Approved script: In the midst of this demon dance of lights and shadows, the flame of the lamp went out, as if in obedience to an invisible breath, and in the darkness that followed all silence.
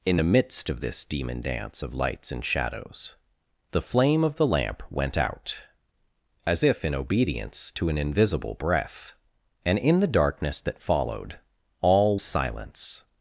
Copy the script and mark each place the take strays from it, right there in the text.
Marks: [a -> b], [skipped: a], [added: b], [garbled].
In the midst of this demon dance of lights and shadows, the flame of the lamp went out, as if in obedience to an invisible breath, and in the darkness that followed all silence.